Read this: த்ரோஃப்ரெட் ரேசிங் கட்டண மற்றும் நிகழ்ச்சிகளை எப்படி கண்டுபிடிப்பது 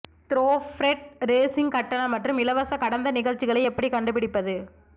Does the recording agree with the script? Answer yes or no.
no